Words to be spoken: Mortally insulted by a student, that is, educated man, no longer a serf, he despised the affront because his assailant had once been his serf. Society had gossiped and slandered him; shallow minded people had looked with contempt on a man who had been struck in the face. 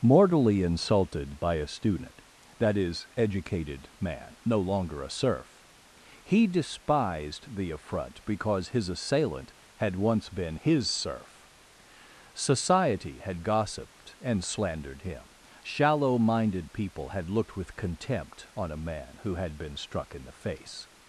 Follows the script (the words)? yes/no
yes